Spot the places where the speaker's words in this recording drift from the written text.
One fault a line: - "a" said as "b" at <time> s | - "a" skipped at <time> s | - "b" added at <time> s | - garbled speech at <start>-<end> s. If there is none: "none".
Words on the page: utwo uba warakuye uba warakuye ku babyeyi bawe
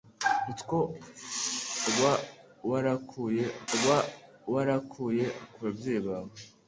none